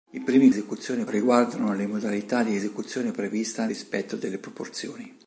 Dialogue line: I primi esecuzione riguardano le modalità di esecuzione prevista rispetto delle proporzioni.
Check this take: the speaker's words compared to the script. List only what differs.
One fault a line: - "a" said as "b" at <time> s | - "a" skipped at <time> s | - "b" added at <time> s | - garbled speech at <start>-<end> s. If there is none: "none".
none